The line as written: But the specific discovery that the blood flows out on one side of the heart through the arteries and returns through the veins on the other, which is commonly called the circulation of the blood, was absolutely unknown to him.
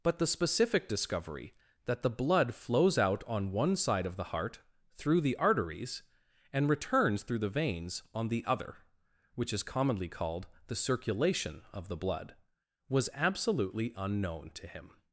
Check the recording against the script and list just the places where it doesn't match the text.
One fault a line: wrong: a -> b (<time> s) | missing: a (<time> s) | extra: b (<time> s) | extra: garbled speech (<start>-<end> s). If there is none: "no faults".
no faults